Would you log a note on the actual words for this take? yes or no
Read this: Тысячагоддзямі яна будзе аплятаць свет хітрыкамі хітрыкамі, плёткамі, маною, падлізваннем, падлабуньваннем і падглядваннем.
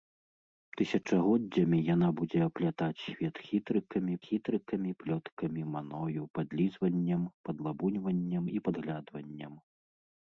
no